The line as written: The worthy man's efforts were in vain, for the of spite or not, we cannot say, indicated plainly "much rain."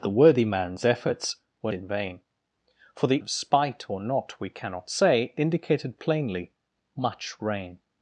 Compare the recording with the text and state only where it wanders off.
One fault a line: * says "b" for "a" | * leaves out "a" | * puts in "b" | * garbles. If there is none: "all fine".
all fine